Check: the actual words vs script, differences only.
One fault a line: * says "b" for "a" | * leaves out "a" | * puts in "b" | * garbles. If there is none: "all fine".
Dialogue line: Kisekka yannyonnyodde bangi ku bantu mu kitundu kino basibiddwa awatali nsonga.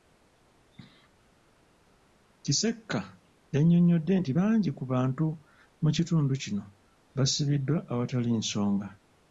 * puts in "nti"